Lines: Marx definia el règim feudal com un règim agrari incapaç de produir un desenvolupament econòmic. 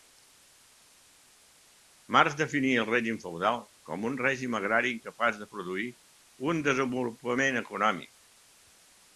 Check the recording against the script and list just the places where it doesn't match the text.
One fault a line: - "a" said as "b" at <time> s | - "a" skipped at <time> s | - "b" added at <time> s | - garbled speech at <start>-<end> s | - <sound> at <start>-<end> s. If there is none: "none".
none